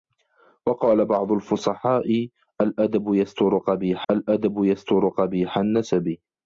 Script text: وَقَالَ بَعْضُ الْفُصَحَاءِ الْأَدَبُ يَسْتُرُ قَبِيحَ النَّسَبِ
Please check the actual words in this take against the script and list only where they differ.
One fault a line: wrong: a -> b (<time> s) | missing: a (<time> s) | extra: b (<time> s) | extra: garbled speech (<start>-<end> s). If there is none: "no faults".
extra: الْأَدَبُ يَسْتُرُ قَبِيحَ (4.1 s)